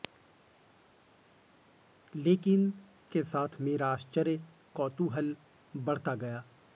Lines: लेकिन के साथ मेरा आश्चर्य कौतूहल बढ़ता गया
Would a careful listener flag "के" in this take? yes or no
no